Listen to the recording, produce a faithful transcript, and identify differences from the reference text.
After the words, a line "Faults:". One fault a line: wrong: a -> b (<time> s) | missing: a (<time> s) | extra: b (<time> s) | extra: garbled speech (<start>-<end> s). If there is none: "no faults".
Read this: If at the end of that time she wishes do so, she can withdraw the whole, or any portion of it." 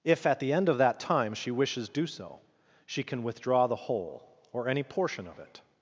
If at the end of that time she wishes do so, she can withdraw the whole, or any portion of it."
Faults:
no faults